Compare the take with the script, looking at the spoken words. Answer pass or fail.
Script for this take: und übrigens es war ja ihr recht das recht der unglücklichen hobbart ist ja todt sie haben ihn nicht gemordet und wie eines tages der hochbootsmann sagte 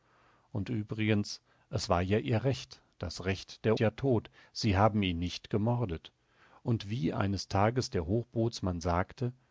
fail